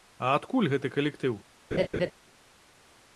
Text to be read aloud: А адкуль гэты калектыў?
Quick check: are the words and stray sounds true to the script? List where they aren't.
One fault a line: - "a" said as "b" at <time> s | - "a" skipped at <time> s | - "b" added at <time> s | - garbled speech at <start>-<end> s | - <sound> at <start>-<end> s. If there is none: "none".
- laugh at 1.7-2.1 s